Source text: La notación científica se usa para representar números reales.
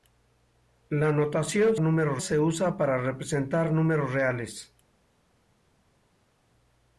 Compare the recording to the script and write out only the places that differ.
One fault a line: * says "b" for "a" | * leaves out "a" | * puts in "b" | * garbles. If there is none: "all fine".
* says "números" for "científica"